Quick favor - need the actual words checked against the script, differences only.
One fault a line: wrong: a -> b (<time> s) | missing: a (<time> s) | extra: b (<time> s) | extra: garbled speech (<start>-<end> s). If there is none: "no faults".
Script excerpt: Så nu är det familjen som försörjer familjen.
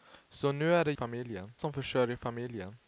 no faults